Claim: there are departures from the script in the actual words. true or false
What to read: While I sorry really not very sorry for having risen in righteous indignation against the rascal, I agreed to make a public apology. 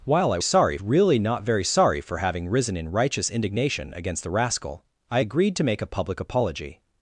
false